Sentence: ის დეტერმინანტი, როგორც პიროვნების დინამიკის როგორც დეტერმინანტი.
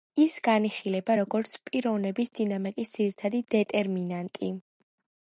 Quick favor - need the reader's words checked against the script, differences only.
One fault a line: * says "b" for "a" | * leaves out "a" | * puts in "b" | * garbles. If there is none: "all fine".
* says "განიხილება" for "დეტერმინანტი"
* says "ძირითადი" for "როგორც"